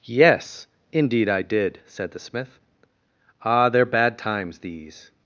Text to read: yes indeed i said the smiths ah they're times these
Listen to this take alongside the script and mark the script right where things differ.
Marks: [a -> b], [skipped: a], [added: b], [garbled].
yes indeed i [added: did] said the [smiths -> smith] ah they're [added: bad] times these